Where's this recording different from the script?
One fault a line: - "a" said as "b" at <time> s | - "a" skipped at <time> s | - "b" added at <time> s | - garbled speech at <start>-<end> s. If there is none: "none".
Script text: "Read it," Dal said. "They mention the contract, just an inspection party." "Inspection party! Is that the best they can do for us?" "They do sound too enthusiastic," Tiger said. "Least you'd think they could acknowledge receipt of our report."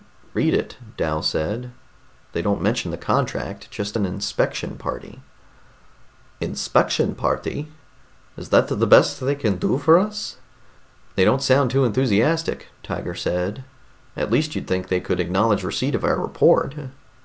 - "don't" added at 2.4 s
- "do" said as "don't" at 11.2 s
- "At" added at 14.1 s